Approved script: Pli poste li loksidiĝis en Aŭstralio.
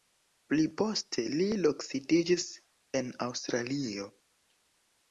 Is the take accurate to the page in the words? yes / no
yes